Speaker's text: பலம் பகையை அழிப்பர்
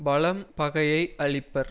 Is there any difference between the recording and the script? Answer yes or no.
no